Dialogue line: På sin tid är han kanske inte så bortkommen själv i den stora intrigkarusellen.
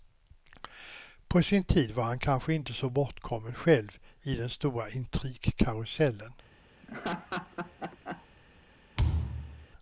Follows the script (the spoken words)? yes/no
no